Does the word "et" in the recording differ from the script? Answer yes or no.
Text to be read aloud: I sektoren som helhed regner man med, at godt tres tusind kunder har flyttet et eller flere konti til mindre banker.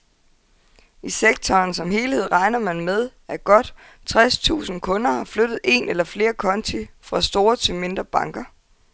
yes